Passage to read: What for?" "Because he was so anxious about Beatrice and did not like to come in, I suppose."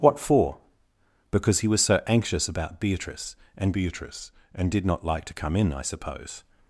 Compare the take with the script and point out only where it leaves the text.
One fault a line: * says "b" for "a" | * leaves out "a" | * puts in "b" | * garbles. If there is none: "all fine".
* puts in "Beatrice and"